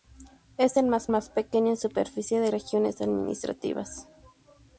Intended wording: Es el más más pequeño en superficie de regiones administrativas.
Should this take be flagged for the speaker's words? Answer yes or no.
no